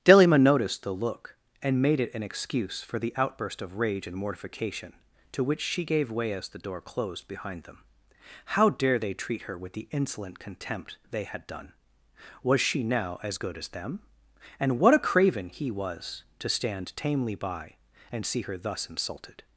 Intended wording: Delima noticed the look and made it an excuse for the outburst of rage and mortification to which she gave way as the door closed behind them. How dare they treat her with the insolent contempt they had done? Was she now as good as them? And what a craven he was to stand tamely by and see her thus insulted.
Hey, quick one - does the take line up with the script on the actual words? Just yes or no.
yes